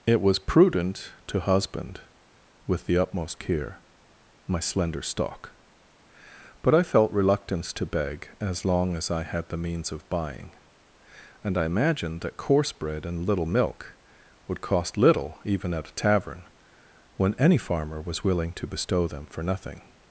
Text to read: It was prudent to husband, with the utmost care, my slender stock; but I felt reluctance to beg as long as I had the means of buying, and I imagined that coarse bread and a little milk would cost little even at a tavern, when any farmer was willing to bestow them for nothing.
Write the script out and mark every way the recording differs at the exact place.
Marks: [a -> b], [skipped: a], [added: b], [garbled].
It was prudent to husband, with the utmost care, my slender stock; but I felt reluctance to beg as long as I had the means of buying, and I imagined that coarse bread and [skipped: a] little milk would cost little even at a tavern, when any farmer was willing to bestow them for nothing.